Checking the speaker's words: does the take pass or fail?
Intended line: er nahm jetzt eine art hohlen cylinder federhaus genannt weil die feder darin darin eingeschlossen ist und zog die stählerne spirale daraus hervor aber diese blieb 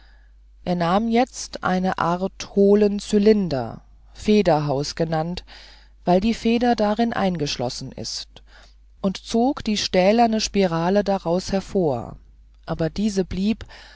fail